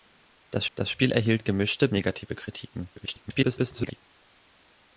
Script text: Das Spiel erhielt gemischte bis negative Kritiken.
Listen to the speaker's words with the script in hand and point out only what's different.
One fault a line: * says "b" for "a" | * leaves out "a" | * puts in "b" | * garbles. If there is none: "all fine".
* puts in "das"
* leaves out "bis"
* garbles